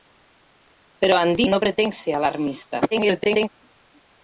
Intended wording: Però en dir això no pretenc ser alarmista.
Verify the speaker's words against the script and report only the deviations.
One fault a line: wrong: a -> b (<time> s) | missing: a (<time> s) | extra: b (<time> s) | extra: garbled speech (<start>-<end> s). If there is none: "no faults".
missing: això (1.5 s)
extra: garbled speech (2.9-3.5 s)